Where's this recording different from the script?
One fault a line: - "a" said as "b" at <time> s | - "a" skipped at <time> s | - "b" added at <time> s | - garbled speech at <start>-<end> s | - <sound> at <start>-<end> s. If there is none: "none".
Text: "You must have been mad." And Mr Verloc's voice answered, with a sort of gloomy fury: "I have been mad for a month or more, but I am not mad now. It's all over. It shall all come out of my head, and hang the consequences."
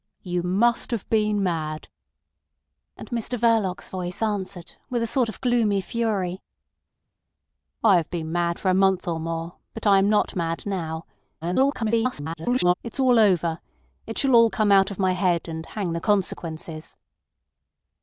- garbled speech at 11.4-12.7 s